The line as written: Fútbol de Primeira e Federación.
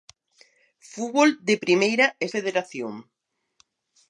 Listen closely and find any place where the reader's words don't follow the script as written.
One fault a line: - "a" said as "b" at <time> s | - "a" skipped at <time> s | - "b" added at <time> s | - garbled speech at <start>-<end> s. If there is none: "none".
none